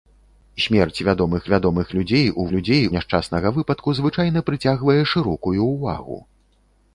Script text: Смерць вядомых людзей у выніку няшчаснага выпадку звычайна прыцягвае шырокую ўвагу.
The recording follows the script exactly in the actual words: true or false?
false